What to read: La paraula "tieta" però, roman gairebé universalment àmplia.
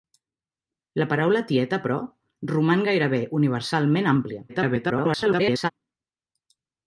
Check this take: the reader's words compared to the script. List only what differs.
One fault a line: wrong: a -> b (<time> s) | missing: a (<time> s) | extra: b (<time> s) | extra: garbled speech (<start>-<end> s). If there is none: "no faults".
extra: garbled speech (4.5-5.7 s)